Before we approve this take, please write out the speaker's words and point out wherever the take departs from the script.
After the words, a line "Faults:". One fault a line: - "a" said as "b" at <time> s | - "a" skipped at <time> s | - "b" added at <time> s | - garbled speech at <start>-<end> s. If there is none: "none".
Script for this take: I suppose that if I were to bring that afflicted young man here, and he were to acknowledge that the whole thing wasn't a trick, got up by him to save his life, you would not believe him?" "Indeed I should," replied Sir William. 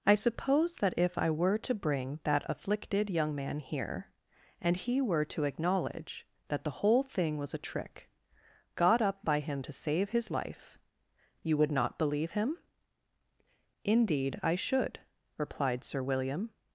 I suppose that if I were to bring that afflicted young man here, and he were to acknowledge that the whole thing was a trick, got up by him to save his life, you would not believe him?" "Indeed I should," replied Sir William.
Faults:
- "wasn't" said as "was" at 7.4 s